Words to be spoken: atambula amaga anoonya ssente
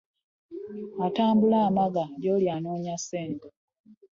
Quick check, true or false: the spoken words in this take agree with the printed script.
false